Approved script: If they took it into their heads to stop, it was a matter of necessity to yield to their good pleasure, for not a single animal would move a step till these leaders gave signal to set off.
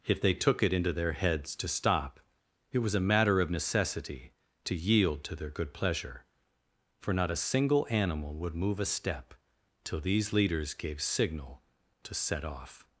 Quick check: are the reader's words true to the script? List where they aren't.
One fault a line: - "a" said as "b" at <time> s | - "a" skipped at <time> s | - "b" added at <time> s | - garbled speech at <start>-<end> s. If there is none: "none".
none